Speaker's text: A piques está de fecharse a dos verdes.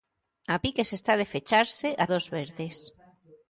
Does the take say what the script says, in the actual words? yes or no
yes